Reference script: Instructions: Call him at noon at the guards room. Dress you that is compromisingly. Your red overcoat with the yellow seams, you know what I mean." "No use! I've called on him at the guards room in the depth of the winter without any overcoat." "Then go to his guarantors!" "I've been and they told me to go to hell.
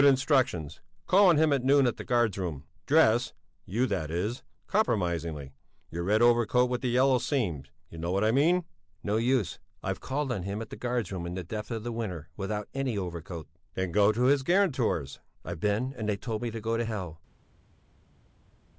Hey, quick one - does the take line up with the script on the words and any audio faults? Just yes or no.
no